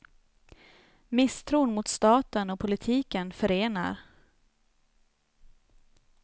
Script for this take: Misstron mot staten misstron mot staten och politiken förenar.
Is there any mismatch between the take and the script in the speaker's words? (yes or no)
yes